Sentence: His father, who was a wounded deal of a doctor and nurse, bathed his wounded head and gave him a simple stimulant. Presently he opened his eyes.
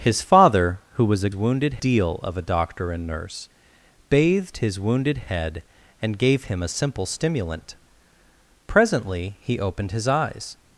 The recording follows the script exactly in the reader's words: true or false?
true